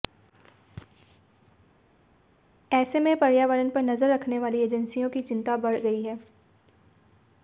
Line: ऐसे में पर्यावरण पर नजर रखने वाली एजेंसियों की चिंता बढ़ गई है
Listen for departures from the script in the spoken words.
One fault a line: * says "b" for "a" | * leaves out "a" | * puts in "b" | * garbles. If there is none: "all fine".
all fine